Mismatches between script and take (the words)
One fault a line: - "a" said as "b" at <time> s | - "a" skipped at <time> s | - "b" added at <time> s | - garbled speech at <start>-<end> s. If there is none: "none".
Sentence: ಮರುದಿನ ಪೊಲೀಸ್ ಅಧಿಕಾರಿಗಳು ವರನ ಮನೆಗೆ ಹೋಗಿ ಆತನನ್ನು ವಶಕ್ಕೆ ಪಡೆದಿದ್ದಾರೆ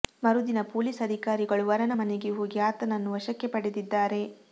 none